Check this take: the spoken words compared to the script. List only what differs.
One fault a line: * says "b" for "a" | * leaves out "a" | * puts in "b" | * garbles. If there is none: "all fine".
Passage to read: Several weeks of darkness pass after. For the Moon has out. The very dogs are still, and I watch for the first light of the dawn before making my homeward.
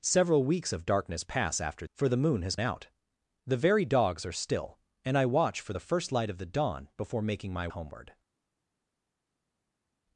all fine